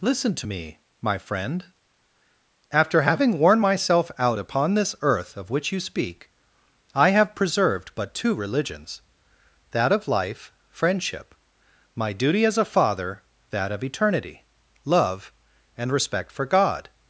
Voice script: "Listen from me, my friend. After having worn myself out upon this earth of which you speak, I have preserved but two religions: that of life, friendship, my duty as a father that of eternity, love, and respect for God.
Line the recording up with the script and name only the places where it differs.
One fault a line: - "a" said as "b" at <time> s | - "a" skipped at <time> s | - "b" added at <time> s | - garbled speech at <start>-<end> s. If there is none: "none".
- "from" said as "to" at 0.3 s